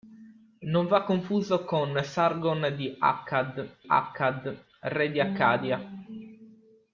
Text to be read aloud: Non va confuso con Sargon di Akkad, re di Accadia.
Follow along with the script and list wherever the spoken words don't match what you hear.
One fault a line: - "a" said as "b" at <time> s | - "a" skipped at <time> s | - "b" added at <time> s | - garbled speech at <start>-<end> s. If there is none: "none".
- "Akkad" added at 3.9 s